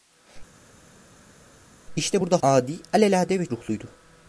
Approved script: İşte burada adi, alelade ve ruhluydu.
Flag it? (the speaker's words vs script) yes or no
no